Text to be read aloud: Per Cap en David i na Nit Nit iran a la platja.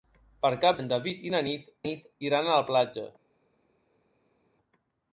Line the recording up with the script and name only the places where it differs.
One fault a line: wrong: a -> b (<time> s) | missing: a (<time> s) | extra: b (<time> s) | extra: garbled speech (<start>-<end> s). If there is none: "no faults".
no faults